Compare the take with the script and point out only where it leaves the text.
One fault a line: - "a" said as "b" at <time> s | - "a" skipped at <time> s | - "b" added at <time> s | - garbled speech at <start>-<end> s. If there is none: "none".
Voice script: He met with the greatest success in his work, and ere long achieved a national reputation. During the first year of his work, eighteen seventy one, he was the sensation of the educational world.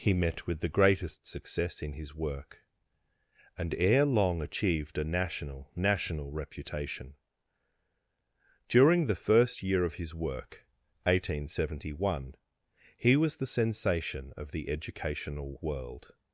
- "national" added at 5.8 s